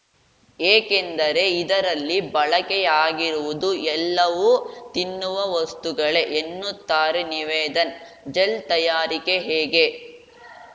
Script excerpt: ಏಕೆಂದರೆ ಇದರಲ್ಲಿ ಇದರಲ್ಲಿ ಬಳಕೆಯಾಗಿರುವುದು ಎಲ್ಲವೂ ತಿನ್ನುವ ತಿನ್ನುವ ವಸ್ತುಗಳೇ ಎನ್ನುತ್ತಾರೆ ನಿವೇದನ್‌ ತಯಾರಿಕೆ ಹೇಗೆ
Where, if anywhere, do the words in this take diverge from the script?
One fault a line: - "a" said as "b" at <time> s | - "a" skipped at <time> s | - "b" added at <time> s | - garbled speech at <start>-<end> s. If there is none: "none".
- "ಇದರಲ್ಲಿ" skipped at 2.2 s
- "ತಿನ್ನುವ" skipped at 5.4 s
- "ಜೆಲ್" added at 8.3 s